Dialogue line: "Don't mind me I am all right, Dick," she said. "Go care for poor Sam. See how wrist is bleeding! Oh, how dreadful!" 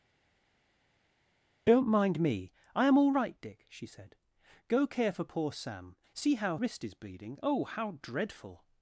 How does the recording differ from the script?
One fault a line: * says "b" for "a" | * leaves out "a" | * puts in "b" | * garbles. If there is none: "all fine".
all fine